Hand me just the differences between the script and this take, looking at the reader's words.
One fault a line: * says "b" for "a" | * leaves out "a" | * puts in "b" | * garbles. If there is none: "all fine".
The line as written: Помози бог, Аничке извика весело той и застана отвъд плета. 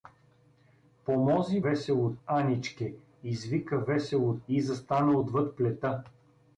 * says "весело" for "бог"
* leaves out "той"